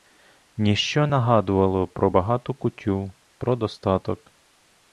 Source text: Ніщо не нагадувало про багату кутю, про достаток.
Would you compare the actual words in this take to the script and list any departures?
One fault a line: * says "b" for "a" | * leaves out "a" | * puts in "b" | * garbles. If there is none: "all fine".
* leaves out "не"